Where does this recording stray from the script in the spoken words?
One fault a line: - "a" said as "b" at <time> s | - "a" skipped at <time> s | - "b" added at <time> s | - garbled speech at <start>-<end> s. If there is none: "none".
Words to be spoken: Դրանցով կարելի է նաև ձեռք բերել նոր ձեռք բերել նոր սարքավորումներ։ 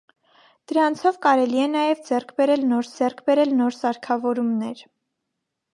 none